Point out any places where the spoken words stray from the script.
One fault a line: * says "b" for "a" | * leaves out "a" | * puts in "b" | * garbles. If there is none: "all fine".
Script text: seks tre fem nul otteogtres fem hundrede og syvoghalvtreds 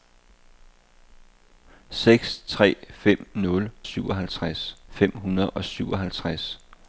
* says "syvoghalvtreds" for "otteogtres"